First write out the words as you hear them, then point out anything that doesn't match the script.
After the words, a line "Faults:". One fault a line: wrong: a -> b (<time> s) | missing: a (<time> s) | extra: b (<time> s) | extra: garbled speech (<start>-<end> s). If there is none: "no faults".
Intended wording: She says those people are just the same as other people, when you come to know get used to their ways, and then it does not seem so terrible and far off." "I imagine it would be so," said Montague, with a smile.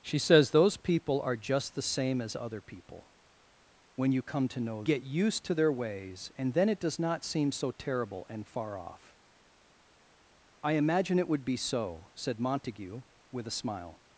She says those people are just the same as other people, when you come to know get used to their ways, and then it does not seem so terrible and far off." "I imagine it would be so," said Montague, with a smile.
Faults:
no faults